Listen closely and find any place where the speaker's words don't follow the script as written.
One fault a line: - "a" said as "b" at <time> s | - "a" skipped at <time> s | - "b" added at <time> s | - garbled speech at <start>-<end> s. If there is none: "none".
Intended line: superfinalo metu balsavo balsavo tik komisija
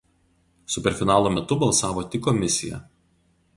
- "balsavo" skipped at 2.1 s